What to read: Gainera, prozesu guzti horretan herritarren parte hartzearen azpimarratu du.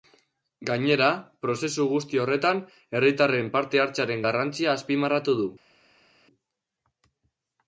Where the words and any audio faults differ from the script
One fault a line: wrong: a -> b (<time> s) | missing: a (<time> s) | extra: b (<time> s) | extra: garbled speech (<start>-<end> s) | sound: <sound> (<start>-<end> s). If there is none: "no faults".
extra: garrantzia (4.3 s)